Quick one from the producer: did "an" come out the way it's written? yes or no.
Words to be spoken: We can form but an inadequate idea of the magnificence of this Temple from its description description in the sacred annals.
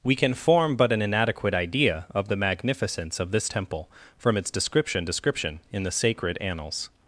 yes